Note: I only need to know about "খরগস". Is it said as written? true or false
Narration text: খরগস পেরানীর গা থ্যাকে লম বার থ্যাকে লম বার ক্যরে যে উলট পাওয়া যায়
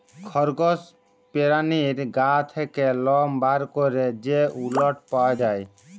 true